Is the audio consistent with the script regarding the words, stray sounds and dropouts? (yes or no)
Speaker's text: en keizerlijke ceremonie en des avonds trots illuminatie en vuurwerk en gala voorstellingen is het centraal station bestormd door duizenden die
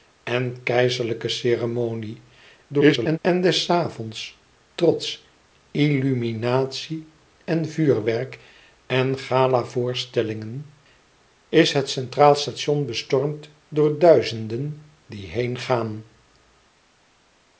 no